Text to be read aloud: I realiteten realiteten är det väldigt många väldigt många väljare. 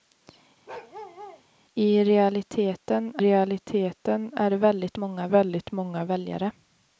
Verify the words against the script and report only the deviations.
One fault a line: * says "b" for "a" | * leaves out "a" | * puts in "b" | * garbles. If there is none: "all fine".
all fine